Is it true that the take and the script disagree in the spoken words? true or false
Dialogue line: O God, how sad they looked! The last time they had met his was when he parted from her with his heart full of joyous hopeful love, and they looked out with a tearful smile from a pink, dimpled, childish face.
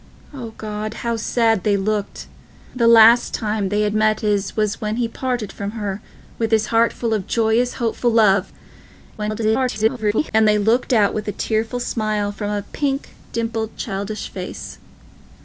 true